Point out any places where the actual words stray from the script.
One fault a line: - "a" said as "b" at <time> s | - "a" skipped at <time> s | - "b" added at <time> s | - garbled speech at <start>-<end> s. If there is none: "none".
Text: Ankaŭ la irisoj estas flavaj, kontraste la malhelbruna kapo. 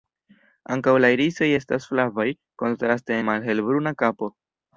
none